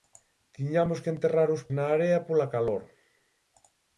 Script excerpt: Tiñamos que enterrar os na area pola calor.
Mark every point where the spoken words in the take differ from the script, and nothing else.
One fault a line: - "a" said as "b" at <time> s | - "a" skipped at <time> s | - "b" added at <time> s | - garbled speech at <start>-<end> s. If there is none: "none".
none